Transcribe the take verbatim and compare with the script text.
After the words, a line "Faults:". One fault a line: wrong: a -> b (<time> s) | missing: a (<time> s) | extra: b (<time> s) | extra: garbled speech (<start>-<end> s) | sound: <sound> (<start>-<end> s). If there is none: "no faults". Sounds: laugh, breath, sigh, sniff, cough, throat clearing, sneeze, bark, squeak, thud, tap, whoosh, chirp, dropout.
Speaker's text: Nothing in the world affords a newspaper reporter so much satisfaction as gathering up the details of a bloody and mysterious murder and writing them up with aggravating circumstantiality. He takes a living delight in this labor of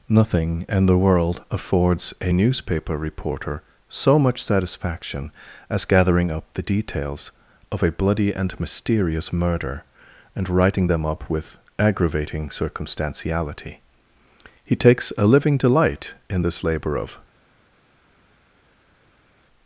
Nothing in the world affords a newspaper reporter so much satisfaction as gathering up the details of a bloody and mysterious murder and writing them up with aggravating circumstantiality. He takes a living delight in this labor of
Faults:
no faults